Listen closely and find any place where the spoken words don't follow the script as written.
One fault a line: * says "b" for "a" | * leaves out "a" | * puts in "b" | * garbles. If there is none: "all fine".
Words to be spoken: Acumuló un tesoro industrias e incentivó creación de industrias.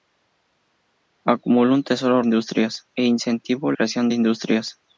all fine